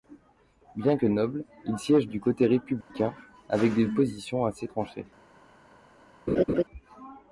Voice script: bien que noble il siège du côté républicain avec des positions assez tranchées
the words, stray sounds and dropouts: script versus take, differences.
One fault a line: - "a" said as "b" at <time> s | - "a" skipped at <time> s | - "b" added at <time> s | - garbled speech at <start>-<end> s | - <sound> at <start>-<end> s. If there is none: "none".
- dropout at 2.8-2.9 s
- laugh at 6.3-6.6 s